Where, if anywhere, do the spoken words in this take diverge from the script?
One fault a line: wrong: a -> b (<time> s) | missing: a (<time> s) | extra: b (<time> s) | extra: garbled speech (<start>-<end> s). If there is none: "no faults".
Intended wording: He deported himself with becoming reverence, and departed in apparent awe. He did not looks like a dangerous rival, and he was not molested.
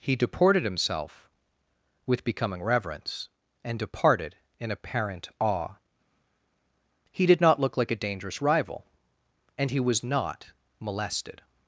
wrong: looks -> look (7.6 s)